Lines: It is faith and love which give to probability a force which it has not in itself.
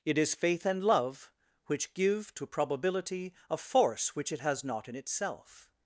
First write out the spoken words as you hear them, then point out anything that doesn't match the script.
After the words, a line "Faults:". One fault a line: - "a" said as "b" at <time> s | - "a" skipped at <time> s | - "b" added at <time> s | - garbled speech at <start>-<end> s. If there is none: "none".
It is faith and love which give to probability a force which it has not in itself.
Faults:
none